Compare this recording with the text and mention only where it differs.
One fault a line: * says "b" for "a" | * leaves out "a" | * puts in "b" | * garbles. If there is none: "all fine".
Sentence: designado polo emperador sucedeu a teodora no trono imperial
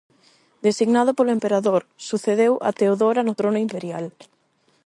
all fine